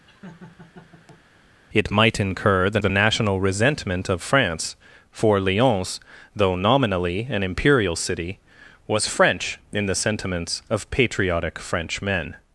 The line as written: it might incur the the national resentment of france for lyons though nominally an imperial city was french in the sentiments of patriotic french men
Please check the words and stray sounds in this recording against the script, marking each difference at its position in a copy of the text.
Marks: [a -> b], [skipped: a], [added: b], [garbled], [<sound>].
[laugh] it might incur the the national resentment of france for lyons though nominally an imperial city was french in the sentiments of patriotic french men